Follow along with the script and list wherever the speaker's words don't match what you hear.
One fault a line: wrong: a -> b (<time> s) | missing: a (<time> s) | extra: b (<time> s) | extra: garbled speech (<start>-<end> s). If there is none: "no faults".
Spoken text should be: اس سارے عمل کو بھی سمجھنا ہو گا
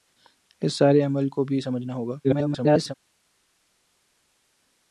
extra: garbled speech (2.2-2.9 s)